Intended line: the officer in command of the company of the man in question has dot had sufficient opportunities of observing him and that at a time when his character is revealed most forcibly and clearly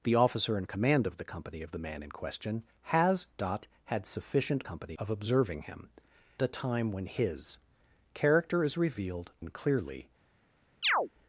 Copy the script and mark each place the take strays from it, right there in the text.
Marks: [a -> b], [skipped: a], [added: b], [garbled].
the officer in command of the company of the man in question has dot had sufficient [opportunities -> company] of observing him [skipped: and that at] a time when his character is revealed [skipped: most forcibly] and clearly